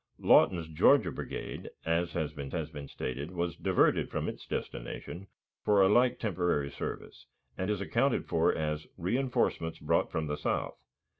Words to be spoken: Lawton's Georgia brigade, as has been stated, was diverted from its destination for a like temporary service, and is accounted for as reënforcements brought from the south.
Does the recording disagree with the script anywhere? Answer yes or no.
yes